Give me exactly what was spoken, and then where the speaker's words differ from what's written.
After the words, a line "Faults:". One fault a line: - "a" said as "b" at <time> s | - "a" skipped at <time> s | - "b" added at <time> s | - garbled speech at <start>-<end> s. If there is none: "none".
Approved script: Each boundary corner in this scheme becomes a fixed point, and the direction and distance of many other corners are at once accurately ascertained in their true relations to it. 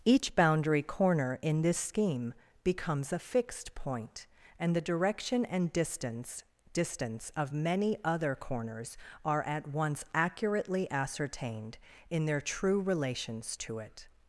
Each boundary corner in this scheme becomes a fixed point, and the direction and distance distance of many other corners are at once accurately ascertained in their true relations to it.
Faults:
- "distance" added at 6.7 s